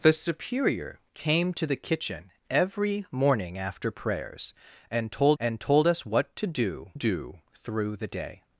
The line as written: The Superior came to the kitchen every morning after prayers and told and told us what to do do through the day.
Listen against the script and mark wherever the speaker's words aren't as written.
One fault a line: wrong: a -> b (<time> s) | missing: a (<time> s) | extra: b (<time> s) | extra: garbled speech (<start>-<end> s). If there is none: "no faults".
no faults